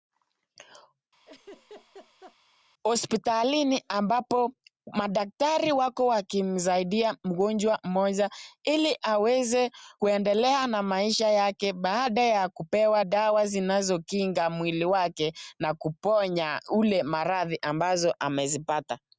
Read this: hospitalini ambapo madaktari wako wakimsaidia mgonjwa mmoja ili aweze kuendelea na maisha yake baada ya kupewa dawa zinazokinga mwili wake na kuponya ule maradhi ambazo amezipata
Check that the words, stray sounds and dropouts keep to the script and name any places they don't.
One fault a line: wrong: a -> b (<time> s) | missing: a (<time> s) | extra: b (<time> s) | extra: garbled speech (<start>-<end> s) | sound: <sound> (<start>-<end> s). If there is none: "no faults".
sound: laugh (1.3-2.4 s)